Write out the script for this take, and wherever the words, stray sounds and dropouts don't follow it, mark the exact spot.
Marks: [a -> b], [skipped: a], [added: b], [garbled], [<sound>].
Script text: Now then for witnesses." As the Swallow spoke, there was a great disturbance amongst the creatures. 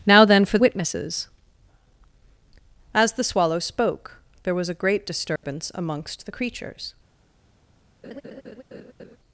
Now then for witnesses." As the Swallow spoke, there was a great disturbance [dropout] amongst the creatures. [laugh]